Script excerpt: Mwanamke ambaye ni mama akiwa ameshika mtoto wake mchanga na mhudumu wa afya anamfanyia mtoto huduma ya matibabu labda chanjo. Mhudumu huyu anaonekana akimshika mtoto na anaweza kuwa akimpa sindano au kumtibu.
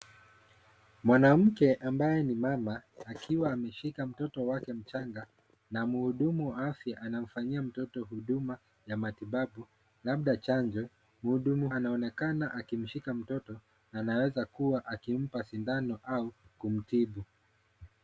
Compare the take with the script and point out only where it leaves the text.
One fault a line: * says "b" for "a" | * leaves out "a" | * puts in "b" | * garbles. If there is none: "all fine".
* leaves out "huyu"